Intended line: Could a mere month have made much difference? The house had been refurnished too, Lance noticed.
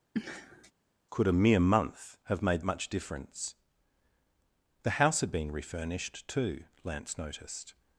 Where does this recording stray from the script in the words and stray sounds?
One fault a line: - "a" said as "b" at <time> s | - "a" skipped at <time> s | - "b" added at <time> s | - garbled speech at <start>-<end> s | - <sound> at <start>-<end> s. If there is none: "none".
- sniff at 0.1-0.7 s